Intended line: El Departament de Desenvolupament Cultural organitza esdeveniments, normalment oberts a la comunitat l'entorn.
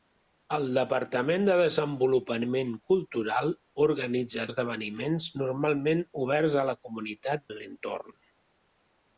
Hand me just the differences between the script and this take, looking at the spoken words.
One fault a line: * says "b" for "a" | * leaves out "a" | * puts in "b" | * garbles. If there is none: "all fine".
all fine